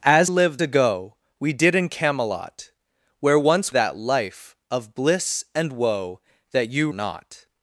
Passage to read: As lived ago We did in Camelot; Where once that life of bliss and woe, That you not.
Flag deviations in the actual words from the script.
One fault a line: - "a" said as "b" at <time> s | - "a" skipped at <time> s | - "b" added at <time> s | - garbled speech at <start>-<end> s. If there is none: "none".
none